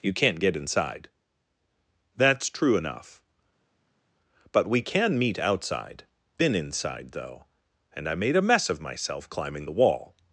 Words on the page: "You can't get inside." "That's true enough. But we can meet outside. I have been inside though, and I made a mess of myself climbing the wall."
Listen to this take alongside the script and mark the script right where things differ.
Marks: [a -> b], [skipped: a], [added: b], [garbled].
"You can't get inside." "That's true enough. But we can meet outside. [skipped: I have] been inside though, and I made a mess of myself climbing the wall."